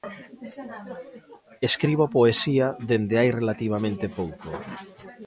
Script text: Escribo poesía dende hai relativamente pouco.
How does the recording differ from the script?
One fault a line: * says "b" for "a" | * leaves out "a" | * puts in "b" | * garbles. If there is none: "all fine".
all fine